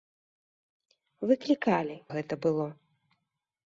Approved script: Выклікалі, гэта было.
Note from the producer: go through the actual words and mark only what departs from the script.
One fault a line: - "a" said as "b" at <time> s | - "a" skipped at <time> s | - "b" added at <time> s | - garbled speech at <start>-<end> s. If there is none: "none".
none